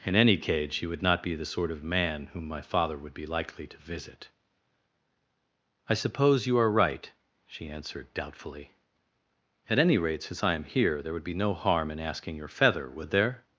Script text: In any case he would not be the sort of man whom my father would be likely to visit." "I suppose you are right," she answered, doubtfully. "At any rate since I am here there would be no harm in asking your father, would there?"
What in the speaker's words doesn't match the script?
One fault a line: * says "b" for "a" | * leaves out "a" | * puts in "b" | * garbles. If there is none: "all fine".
* says "cage" for "case"
* says "feather" for "father"